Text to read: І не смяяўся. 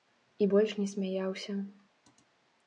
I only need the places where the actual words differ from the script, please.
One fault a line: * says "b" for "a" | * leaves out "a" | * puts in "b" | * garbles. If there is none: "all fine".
* puts in "больш"